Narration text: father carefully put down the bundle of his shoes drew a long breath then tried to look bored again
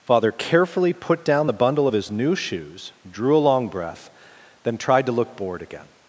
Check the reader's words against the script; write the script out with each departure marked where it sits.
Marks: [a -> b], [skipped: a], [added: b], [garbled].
father carefully put down the bundle of his [added: new] shoes drew a long breath then tried to look bored again